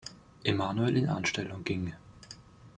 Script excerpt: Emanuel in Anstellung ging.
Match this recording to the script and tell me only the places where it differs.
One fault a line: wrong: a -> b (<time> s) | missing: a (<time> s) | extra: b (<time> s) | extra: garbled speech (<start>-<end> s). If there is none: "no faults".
no faults